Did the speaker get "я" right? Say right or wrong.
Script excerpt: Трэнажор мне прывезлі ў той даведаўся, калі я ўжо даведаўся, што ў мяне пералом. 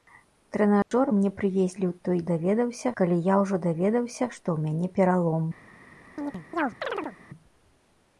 right